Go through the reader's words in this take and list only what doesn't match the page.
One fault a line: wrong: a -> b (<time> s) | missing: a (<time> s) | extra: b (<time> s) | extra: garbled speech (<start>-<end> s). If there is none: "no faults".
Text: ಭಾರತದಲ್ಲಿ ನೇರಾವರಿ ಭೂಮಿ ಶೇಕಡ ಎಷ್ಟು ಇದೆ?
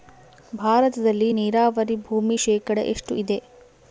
no faults